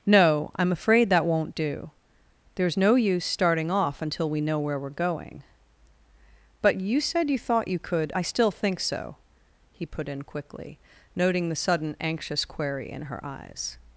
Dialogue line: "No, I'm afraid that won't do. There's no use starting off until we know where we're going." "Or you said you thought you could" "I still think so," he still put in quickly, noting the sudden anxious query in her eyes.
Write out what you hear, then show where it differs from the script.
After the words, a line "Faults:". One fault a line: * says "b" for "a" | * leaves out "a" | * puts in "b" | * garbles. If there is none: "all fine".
"No, I'm afraid that won't do. There's no use starting off until we know where we're going." "But you said you thought you could" "I still think so," he put in quickly, noting the sudden anxious query in her eyes.
Faults:
* says "But" for "Or"
* leaves out "still"